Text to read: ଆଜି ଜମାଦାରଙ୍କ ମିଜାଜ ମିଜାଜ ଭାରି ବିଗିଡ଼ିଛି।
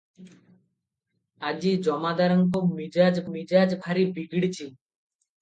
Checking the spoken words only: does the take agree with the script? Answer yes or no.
yes